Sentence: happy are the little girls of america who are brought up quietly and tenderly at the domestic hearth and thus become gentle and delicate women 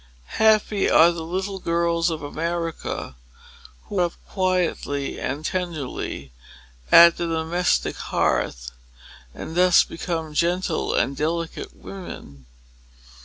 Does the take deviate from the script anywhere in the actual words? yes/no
yes